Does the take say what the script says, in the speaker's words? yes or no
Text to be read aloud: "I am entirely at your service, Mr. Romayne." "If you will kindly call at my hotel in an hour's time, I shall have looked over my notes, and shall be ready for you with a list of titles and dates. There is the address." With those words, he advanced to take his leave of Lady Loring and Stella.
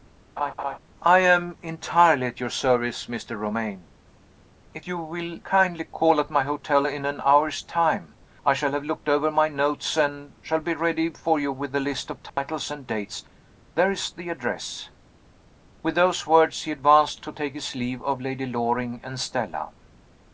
yes